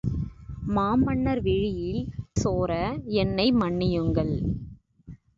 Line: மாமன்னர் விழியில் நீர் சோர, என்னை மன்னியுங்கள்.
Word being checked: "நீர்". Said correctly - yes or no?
no